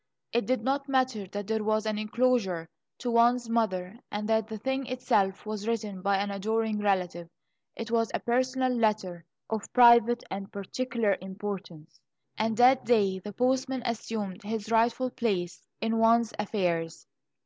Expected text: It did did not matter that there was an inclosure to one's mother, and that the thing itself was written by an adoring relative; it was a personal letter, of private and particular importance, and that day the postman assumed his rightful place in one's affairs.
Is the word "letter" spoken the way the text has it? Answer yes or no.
yes